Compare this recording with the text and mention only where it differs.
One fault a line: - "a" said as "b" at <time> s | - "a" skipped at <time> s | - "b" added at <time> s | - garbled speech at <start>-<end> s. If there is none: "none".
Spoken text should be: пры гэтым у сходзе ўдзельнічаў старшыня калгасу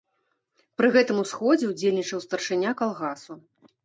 none